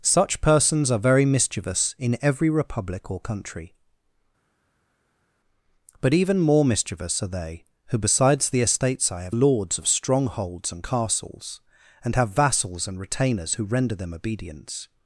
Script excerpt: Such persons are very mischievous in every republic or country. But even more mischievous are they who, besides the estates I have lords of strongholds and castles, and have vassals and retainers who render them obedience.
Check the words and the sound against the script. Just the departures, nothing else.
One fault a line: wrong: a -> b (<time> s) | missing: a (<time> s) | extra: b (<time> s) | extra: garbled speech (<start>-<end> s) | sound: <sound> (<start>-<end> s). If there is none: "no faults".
no faults